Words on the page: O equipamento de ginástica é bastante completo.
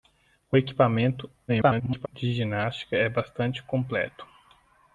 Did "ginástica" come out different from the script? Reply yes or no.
no